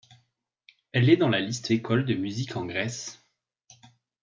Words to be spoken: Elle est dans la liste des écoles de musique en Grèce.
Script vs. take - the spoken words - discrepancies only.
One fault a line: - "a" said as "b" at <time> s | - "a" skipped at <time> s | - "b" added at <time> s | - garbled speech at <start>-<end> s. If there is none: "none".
- "des" skipped at 1.7 s